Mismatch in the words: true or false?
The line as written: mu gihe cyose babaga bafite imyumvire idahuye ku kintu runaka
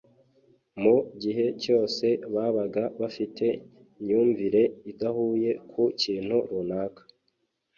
false